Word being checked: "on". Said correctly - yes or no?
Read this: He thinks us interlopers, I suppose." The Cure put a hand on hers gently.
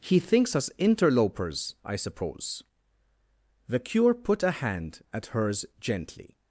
no